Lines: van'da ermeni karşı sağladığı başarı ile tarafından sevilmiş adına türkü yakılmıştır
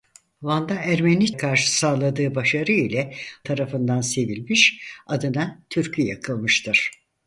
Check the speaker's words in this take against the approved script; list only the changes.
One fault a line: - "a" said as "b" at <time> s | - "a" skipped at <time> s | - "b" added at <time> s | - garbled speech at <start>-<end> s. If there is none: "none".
none